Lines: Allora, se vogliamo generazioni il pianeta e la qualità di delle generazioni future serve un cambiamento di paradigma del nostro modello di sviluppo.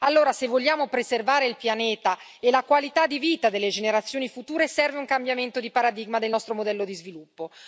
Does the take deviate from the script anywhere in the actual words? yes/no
yes